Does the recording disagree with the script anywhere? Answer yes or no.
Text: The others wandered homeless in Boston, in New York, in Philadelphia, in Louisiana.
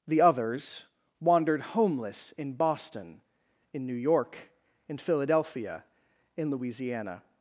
no